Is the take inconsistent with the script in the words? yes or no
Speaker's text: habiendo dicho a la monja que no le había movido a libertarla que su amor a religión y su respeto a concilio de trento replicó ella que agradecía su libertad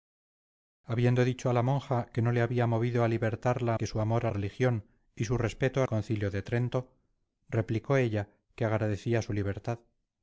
no